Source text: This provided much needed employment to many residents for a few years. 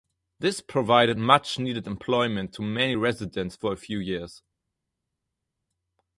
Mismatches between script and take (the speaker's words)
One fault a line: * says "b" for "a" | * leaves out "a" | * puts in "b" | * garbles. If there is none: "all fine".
all fine